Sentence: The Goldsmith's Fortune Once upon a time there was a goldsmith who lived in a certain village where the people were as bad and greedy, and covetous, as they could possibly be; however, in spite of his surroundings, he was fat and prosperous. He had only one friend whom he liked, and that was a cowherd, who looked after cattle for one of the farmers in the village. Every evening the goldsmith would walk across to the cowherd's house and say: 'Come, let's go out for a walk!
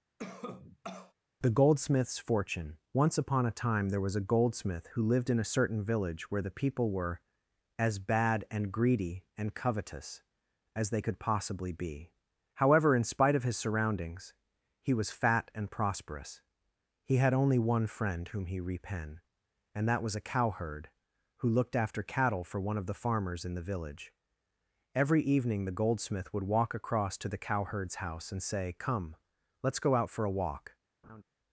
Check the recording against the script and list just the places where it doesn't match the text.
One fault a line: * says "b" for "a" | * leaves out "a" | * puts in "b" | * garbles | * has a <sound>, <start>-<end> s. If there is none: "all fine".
* has a cough, 0.2-1.1 s
* says "repen" for "liked"
* has a laugh, 31.0-31.2 s